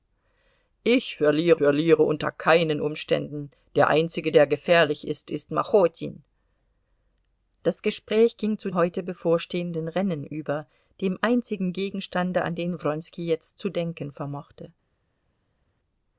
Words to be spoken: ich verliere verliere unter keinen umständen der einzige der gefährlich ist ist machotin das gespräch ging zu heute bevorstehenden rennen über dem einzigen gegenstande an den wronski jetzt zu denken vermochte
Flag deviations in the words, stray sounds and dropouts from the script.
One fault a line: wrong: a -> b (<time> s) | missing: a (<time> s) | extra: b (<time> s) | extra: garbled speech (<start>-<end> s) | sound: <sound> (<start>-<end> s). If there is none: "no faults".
no faults